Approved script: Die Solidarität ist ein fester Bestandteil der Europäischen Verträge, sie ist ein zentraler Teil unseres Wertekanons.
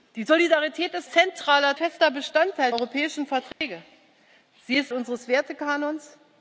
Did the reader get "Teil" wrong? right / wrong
wrong